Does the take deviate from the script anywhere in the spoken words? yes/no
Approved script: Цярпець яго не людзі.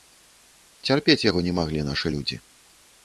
yes